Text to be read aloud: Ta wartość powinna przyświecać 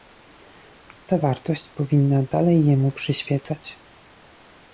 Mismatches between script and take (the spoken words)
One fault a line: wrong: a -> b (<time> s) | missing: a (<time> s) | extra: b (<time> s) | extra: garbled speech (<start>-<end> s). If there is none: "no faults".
extra: dalej jemu (2.2 s)